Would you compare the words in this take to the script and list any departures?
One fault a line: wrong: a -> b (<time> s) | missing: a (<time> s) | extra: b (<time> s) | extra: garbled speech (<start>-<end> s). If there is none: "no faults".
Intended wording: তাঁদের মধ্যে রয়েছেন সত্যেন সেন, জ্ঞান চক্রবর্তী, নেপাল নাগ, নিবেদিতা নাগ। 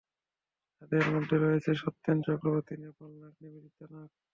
missing: সেন জ্ঞান (2.2 s)